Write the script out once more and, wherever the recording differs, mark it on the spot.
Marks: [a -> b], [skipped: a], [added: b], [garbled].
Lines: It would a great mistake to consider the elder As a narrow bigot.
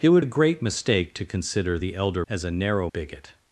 It would a great mistake to consider the elder As a narrow bigot.